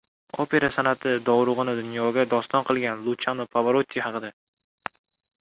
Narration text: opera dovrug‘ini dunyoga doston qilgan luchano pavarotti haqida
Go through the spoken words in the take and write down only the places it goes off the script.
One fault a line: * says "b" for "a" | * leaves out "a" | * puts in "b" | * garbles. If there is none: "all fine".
* puts in "san'ati"